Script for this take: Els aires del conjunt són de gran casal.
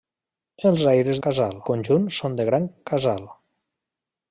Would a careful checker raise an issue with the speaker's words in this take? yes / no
yes